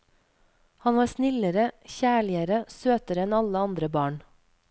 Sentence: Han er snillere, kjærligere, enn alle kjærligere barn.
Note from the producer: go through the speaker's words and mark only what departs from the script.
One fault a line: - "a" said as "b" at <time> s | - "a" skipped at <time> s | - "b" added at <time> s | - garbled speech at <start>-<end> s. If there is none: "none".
- "er" said as "var" at 1.0 s
- "søtere" added at 2.7 s
- "kjærligere" said as "andre" at 3.7 s